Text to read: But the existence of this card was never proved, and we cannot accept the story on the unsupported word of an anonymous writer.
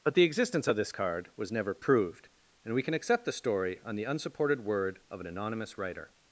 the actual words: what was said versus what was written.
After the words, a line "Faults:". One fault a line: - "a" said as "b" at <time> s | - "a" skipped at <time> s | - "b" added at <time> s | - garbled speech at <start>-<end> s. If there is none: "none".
But the existence of this card was never proved, and we can accept the story on the unsupported word of an anonymous writer.
Faults:
- "cannot" said as "can" at 2.8 s